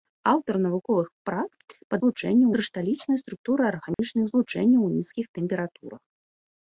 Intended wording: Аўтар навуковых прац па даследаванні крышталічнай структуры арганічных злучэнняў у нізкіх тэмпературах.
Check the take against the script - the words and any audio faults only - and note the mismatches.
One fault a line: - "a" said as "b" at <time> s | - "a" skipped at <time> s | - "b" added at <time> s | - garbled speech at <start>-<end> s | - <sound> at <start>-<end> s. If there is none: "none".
- "даследаванні" said as "злучэнняў" at 2.0 s
- dropout at 3.9-4.0 s